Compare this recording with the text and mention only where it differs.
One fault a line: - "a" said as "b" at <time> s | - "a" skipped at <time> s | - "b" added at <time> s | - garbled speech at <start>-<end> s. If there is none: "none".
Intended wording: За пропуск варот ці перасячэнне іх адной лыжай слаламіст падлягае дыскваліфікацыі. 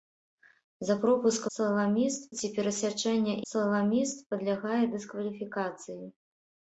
- "варот" said as "слаламіст" at 1.6 s
- "іх адной лыжай" skipped at 3.4 s